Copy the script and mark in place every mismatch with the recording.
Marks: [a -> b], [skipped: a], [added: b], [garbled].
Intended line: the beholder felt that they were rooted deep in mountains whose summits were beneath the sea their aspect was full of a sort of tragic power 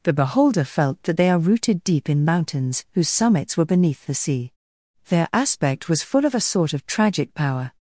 the beholder felt that they [were -> are] rooted deep in mountains whose summits were beneath the sea their aspect was full of a sort of tragic power